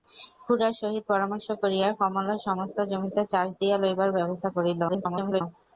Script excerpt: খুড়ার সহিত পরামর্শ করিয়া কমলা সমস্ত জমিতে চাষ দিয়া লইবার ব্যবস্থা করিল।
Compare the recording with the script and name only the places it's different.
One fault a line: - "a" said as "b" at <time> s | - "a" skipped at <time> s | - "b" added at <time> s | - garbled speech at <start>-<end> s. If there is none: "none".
- garbled speech at 4.9-5.4 s